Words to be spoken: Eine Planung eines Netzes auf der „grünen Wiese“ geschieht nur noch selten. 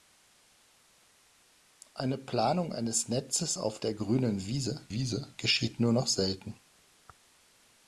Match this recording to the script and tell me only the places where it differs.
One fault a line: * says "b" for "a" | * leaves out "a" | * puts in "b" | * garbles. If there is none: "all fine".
* puts in "Wiese"